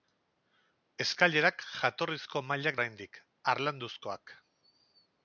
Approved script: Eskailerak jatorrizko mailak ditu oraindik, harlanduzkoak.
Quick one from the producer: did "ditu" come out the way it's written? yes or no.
no